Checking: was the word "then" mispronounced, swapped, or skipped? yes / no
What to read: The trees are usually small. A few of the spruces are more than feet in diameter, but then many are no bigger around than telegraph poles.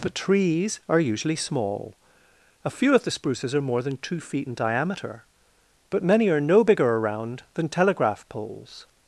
yes